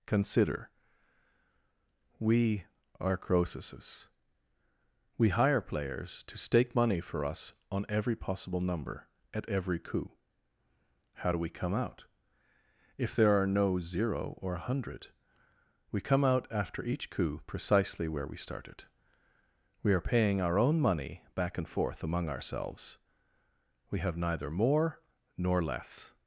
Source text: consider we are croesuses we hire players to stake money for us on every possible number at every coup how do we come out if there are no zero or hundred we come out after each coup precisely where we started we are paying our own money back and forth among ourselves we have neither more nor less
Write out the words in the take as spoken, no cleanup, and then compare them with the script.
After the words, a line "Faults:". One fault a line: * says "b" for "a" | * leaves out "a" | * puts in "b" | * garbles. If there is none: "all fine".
consider we are croesuses we hire players to stake money for us on every possible number at every coup how do we come out if there are no zero or a hundred we come out after each coup precisely where we started we are paying our own money back and forth among ourselves we have neither more nor less
Faults:
* puts in "a"